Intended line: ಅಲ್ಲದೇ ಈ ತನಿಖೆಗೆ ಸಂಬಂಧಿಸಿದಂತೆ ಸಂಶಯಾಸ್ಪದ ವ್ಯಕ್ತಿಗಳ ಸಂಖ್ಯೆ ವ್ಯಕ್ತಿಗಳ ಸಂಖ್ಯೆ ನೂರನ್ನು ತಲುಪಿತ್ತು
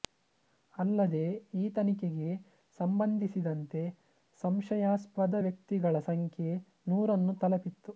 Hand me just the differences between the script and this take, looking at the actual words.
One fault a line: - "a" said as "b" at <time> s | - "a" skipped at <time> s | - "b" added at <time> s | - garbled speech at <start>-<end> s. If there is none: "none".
- "ವ್ಯಕ್ತಿಗಳ ಸಂಖ್ಯೆ" skipped at 6.5 s